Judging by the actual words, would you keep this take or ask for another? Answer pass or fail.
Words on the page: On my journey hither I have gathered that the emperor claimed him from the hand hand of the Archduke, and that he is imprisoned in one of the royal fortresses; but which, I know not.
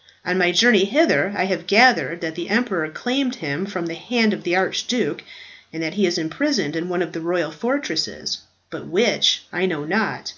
fail